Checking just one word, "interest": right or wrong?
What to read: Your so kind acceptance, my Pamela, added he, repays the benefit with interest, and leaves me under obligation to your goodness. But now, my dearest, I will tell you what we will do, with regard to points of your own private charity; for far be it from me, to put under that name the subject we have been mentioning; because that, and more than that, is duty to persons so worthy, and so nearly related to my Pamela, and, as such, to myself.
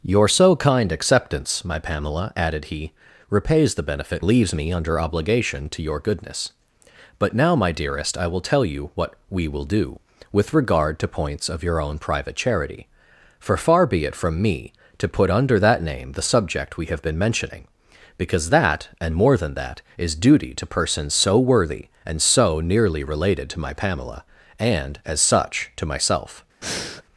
wrong